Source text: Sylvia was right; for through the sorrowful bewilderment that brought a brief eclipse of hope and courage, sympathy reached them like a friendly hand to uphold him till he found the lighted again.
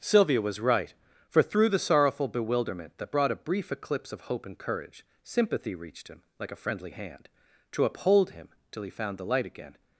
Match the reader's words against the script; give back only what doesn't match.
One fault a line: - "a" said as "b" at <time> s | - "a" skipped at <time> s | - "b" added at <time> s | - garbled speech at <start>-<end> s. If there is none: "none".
- "them" said as "him" at 6.1 s
- "lighted" said as "light" at 9.3 s